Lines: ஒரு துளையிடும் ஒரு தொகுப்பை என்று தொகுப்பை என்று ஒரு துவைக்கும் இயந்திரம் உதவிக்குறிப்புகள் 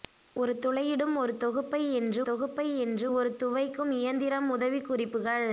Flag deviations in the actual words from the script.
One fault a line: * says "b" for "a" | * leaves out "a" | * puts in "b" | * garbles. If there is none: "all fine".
all fine